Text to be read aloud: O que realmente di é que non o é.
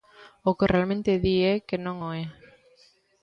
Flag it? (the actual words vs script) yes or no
no